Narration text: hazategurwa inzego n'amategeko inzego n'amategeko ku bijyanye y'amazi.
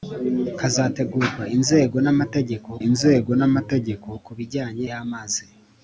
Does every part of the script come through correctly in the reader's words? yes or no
yes